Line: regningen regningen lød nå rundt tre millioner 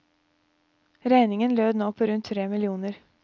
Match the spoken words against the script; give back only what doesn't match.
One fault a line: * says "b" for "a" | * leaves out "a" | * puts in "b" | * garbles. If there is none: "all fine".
* leaves out "regningen"
* puts in "på"